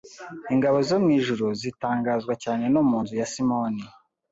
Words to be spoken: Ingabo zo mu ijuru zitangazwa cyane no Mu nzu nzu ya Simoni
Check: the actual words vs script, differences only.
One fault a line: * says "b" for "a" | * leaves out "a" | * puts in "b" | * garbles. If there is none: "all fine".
* leaves out "nzu"